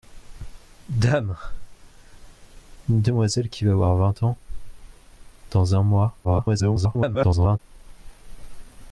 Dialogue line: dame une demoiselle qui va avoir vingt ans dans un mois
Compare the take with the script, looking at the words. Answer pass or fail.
fail